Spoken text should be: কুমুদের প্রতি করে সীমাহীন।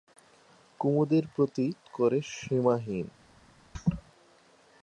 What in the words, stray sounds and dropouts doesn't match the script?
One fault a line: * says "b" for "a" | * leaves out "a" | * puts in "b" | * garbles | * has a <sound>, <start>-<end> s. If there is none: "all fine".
* has a laugh, 3.7-4.0 s